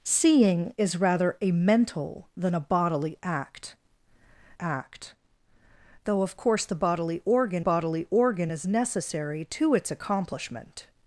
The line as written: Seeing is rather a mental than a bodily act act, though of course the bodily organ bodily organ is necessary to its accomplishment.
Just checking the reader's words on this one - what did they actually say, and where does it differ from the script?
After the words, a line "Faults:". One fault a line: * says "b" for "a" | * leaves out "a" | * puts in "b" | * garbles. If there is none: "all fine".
Seeing is rather a mental than a bodily act act, though of course the bodily organ bodily organ is necessary to its accomplishment.
Faults:
all fine